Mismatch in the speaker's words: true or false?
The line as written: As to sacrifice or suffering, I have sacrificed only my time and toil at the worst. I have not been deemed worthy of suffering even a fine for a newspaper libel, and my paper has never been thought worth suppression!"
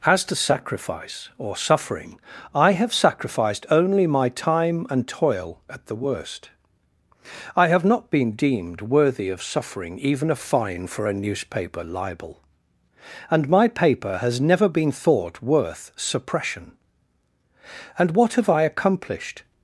true